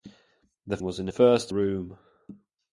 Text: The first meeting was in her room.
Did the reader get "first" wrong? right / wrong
wrong